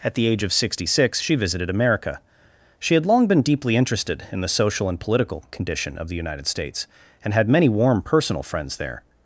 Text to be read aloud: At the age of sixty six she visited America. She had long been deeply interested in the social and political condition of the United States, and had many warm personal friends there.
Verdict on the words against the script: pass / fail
pass